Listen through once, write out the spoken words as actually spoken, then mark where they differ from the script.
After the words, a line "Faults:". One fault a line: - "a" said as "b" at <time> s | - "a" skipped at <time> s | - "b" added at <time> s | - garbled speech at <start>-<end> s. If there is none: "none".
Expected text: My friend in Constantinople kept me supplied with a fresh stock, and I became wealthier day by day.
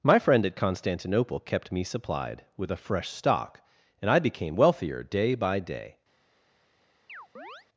My friend at Constantinople kept me supplied with a fresh stock, and I became wealthier day by day.
Faults:
- "in" said as "at" at 0.5 s